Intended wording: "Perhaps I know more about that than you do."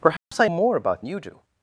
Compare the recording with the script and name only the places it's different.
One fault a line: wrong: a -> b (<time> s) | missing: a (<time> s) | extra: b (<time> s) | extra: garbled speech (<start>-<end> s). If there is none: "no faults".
missing: know (0.5 s)
missing: that than (1.0 s)